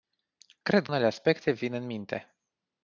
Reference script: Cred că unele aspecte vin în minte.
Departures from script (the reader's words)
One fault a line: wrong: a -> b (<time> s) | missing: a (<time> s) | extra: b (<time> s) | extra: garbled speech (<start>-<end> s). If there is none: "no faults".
missing: că (0.9 s)